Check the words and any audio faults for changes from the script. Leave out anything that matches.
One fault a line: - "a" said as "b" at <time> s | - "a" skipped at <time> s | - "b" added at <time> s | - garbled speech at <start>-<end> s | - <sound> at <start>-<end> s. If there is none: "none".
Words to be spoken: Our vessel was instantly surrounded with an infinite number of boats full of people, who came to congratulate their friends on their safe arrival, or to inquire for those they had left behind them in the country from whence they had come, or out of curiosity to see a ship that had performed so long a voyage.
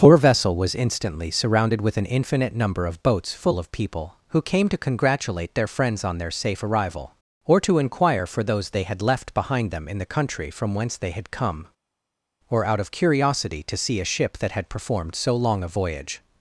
- "Our" said as "Poor" at 0.0 s